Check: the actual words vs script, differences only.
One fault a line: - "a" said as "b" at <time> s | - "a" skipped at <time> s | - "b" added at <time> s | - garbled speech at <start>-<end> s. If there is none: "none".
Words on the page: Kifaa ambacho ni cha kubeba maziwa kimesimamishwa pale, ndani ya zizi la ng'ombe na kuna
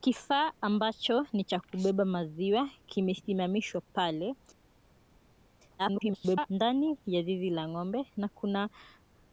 - garbled speech at 5.8-6.5 s